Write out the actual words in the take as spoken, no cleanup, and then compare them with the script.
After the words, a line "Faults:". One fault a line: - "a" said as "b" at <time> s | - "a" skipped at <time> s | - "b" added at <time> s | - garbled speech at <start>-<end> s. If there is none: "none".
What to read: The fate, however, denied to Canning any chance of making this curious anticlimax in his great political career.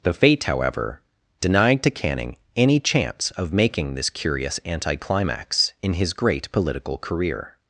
The fate, however, denied to Canning any chance of making this curious anticlimax in his great political career.
Faults:
none